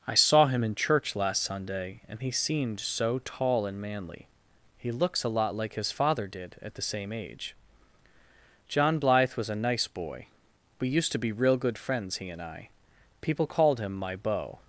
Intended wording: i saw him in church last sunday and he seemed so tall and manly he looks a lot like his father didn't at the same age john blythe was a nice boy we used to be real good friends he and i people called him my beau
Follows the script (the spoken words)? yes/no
no